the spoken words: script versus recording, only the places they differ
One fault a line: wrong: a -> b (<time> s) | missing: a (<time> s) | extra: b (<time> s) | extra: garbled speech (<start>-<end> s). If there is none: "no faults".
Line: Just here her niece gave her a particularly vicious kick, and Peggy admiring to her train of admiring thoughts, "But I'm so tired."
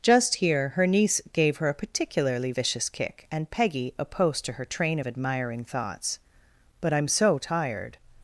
wrong: admiring -> opposed (4.0 s)